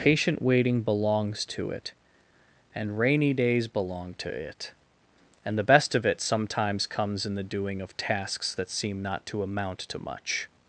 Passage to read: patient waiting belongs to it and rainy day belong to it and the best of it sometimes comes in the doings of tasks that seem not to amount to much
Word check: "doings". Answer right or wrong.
wrong